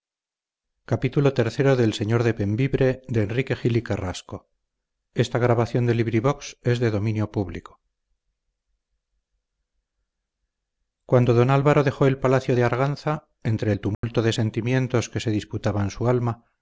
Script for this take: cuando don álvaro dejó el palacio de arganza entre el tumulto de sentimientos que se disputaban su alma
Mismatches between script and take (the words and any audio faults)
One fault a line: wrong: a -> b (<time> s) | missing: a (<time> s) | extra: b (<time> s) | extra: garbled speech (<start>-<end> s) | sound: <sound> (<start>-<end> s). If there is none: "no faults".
sound: dropout (13.9-14.0 s)